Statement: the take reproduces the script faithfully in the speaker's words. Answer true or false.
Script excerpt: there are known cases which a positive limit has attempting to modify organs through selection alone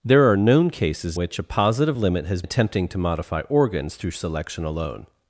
true